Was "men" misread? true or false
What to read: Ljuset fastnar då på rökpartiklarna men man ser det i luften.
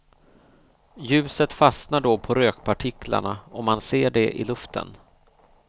true